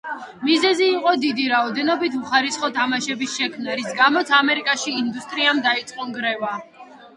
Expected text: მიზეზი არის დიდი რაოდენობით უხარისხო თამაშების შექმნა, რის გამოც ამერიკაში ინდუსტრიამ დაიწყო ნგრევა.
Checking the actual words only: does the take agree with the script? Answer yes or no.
no